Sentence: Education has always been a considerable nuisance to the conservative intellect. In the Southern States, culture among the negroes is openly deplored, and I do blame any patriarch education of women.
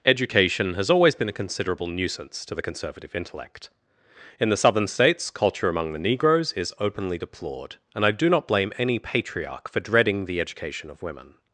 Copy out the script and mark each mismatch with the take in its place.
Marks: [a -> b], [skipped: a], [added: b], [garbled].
Education has always been a considerable nuisance to the conservative intellect. In the Southern States, culture among the negroes is openly deplored, and I do [added: not] blame any patriarch [added: for dreading the] education of women.